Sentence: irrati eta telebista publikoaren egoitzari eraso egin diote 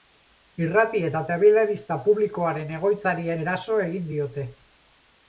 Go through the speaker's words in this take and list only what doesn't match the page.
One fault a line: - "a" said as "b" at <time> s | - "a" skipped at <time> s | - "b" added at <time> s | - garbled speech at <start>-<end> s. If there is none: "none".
none